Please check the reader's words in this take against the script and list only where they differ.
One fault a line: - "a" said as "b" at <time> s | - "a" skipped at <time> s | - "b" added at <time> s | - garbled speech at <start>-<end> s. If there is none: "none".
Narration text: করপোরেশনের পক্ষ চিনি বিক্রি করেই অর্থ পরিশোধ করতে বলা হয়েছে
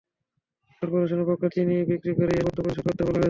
none